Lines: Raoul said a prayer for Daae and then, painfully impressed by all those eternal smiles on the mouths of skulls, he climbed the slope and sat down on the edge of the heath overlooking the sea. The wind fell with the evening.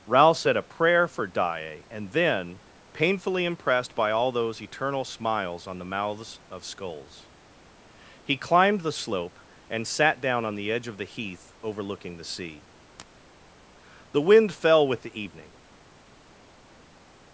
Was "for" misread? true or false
false